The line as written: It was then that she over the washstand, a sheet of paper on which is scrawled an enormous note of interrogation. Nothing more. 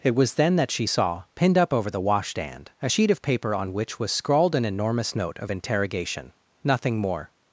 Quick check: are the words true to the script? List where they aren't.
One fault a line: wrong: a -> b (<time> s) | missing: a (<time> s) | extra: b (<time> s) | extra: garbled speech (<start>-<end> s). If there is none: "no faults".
extra: saw pinned up (0.8 s)
wrong: is -> was (4.0 s)